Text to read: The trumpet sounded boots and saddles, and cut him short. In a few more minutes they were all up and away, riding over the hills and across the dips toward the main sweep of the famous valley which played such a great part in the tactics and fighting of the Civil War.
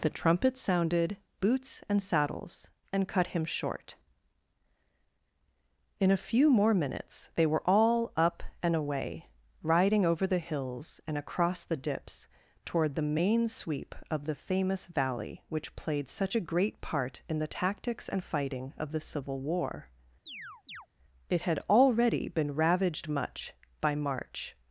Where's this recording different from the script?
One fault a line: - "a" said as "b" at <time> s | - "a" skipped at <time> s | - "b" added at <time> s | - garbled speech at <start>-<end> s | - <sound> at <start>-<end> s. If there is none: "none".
- chirp at 20.3-20.9 s
- "It had already been ravaged much by march" added at 21.3 s